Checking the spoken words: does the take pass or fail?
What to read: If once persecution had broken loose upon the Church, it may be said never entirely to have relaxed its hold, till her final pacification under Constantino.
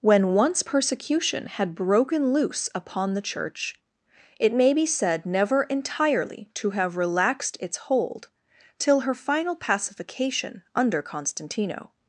fail